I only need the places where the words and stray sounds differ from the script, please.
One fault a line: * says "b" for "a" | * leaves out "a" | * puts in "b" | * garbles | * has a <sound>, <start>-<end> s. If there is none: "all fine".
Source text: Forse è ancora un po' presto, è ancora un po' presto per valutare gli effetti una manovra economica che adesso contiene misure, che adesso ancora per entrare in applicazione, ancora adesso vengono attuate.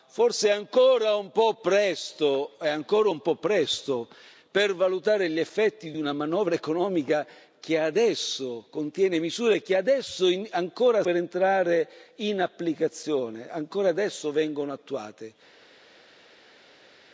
all fine